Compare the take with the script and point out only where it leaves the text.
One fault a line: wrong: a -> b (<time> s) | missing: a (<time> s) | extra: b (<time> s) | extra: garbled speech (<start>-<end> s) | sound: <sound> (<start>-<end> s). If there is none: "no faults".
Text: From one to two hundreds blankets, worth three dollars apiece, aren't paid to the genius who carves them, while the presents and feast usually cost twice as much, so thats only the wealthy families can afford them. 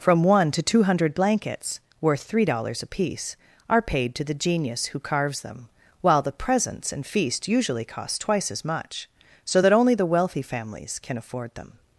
wrong: hundreds -> hundred (0.8 s)
wrong: aren't -> are (3.7 s)
wrong: thats -> that (9.6 s)